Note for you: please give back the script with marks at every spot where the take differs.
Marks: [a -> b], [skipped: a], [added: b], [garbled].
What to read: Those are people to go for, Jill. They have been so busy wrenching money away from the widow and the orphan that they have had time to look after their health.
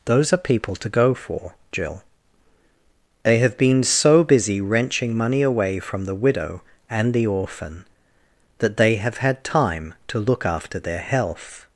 Those are people to go for, Jill. They have been so busy wrenching money away from the widow and the orphan that they have had time to look after their health.